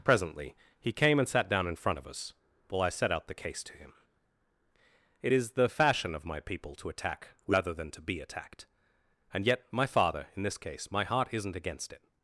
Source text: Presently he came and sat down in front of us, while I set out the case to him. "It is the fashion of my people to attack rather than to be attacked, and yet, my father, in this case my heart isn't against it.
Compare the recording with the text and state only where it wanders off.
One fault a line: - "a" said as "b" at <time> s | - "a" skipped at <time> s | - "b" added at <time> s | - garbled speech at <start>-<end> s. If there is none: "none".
none